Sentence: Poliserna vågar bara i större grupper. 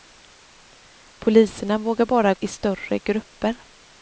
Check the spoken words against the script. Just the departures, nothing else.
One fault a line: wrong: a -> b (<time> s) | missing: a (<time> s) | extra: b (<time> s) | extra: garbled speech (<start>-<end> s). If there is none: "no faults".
no faults